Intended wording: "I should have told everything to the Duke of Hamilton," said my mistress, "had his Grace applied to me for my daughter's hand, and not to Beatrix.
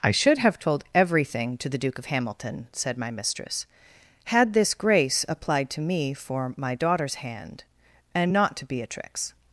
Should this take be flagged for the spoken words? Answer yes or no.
yes